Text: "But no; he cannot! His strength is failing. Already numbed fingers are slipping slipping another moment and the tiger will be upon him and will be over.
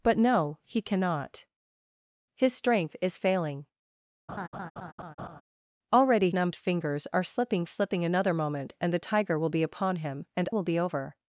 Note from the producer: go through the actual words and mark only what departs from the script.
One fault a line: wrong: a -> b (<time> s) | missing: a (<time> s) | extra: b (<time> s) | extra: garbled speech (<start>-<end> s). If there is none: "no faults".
no faults